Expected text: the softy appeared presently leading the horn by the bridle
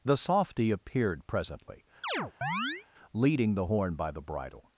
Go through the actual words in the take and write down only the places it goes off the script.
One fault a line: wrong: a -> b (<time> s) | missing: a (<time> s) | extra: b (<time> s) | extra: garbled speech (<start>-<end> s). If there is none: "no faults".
no faults